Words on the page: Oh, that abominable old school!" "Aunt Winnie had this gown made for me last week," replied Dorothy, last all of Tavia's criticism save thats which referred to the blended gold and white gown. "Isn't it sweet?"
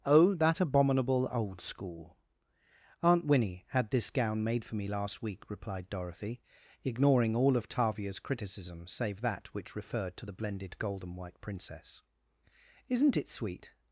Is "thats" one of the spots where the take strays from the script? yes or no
yes